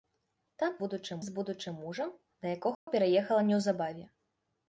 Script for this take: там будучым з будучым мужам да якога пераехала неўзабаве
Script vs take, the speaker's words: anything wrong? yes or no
no